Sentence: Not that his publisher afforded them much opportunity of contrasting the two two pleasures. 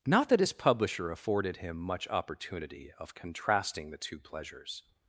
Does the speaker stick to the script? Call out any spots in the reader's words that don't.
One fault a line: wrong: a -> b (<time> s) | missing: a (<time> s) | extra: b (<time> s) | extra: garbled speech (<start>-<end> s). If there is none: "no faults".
wrong: them -> him (1.6 s)
missing: two (4.2 s)